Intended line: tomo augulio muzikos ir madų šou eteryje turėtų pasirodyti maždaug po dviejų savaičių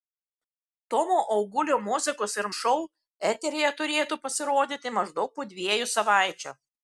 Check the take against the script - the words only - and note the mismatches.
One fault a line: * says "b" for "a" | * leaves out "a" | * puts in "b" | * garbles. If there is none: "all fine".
* leaves out "madų"